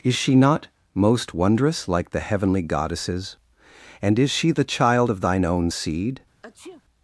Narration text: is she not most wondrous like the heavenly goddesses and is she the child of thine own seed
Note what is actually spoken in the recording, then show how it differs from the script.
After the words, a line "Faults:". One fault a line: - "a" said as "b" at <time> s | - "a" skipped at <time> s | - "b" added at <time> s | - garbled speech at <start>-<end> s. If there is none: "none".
is she not most wondrous like the heavenly goddesses and is she the child of thine own seed
Faults:
none